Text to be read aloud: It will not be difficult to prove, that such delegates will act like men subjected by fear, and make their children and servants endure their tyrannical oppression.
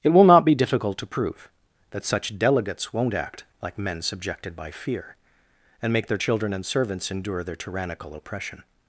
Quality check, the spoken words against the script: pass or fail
fail